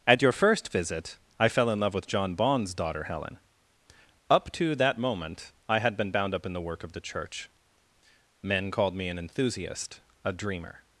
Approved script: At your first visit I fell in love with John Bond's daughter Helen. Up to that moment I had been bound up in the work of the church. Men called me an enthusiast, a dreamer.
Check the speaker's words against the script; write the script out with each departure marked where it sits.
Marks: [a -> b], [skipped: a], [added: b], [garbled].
At your first visit I fell in love with John Bond's daughter Helen. Up to that moment I had been bound up in the work of the church. Men called me an enthusiast, a dreamer.